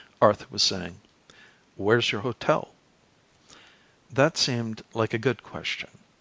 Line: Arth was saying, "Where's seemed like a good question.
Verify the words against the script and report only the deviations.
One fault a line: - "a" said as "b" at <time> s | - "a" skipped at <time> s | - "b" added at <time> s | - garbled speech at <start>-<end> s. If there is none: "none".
- "your hotel That" added at 2.1 s